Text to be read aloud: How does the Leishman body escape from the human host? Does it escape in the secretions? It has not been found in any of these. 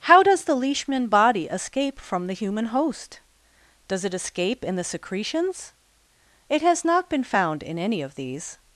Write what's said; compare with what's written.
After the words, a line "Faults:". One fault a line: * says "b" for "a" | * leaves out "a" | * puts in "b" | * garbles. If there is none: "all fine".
How does the Leishman body escape from the human host? Does it escape in the secretions? It has not been found in any of these.
Faults:
all fine